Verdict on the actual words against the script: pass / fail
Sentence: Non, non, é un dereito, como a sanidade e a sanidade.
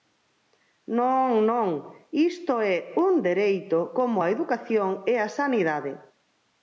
fail